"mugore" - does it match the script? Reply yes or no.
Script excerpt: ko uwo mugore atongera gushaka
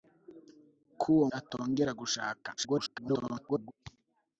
no